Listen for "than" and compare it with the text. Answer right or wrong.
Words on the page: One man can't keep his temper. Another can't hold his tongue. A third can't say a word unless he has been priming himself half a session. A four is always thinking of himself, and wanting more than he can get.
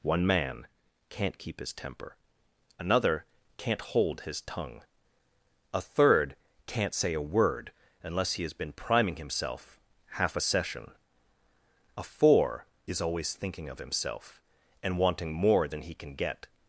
right